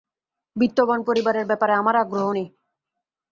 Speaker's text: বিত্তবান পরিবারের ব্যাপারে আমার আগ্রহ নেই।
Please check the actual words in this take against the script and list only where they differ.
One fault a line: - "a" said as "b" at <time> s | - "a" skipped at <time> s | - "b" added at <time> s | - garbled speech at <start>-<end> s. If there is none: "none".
none